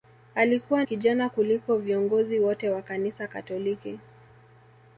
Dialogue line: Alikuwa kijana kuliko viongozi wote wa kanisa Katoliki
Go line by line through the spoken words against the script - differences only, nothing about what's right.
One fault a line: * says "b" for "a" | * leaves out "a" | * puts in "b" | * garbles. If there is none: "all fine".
all fine